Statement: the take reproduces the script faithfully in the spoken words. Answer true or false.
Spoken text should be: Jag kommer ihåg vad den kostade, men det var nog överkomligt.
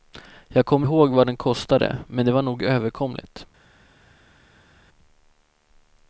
true